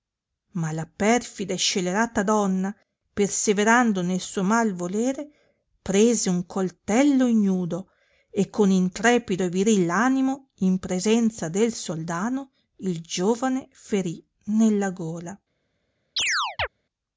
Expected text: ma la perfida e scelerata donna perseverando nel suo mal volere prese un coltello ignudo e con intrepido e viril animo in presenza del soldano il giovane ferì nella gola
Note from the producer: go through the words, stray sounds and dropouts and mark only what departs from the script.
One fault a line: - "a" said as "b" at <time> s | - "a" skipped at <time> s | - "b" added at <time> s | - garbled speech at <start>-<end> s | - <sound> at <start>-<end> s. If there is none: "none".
- chirp at 16.2-16.7 s